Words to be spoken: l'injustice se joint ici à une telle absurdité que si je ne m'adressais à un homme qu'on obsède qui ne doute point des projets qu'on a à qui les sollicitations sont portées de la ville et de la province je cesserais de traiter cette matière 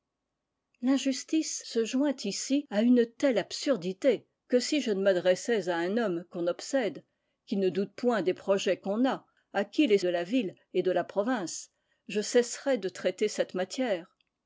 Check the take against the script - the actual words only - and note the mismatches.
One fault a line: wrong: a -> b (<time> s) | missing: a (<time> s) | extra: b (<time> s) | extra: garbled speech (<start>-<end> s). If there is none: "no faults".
missing: sollicitations sont portées (10.0 s)